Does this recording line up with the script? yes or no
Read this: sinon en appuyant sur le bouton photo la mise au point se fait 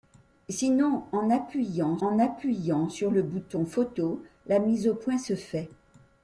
no